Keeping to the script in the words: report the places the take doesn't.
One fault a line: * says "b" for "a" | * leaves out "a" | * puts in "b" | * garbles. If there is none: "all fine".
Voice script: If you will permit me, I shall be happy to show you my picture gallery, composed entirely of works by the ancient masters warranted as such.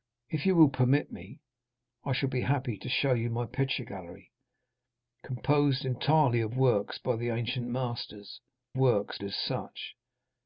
* says "works" for "warranted"